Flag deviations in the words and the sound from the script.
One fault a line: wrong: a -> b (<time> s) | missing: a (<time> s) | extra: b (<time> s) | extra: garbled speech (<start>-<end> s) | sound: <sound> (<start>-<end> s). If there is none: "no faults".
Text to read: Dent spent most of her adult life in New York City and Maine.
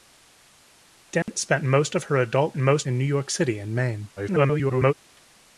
sound: dropout (1.2-1.3 s)
wrong: life -> most (2.6 s)
extra: garbled speech (4.2-4.9 s)